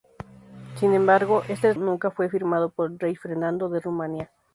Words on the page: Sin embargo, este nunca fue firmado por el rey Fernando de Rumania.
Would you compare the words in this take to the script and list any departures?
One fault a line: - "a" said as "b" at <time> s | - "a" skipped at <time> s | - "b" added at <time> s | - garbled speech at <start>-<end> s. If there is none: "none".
none